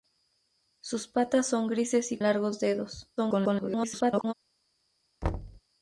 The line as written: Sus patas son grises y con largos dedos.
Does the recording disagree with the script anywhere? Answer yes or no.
yes